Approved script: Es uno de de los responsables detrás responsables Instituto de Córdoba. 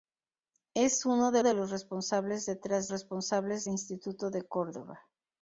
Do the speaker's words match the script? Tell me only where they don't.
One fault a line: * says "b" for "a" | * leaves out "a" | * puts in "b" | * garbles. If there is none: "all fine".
all fine